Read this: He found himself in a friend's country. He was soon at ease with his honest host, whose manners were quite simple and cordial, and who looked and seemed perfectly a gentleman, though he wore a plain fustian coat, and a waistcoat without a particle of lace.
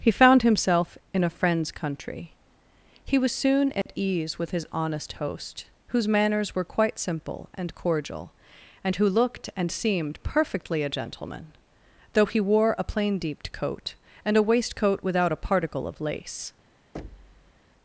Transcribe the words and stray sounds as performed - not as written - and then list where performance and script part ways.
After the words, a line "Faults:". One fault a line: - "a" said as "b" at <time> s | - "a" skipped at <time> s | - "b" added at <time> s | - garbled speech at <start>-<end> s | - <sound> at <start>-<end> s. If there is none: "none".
He found himself in a friend's country. He was soon at ease with his honest host, whose manners were quite simple and cordial, and who looked and seemed perfectly a gentleman, though he wore a plain deeped coat, and a waistcoat without a particle of lace.
Faults:
- dropout at 3.8-3.9 s
- "fustian" said as "deeped" at 13.2 s
- thud at 16.9-17.6 s